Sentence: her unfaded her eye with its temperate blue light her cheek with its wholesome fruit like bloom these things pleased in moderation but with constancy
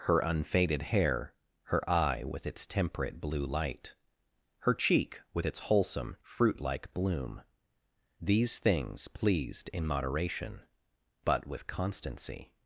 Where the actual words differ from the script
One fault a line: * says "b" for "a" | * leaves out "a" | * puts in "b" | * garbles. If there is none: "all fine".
* puts in "hair"